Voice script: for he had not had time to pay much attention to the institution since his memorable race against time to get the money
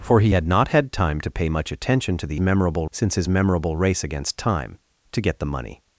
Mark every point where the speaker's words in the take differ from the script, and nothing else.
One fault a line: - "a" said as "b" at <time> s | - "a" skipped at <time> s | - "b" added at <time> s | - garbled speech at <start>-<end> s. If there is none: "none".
- "institution" said as "memorable" at 2.4 s